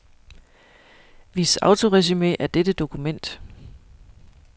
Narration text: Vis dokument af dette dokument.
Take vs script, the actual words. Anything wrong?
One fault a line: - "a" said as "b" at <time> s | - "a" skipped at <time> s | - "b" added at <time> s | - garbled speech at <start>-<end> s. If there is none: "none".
- "dokument" said as "autoresumé" at 1.6 s